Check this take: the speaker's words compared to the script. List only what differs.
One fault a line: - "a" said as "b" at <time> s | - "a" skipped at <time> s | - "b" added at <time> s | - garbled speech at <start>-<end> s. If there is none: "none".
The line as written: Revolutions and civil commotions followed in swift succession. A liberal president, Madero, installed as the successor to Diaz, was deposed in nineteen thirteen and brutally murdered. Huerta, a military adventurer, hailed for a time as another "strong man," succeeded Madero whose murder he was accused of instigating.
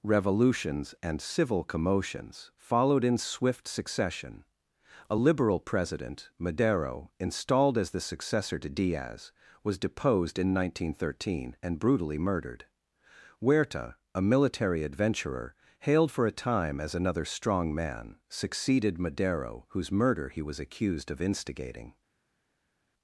none